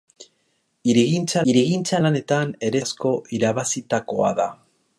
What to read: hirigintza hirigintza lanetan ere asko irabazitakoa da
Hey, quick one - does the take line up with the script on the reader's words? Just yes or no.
yes